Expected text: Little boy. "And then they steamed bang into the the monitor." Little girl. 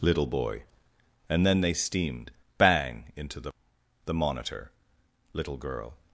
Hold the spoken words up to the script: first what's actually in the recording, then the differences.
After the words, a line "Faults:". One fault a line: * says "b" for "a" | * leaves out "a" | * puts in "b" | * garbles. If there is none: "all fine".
Little boy. "And then they steamed bang into the the monitor." Little girl.
Faults:
all fine